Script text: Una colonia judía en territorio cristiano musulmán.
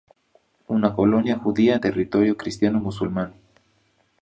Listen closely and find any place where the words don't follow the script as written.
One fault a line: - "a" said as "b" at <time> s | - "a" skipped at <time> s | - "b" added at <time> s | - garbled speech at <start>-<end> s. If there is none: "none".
none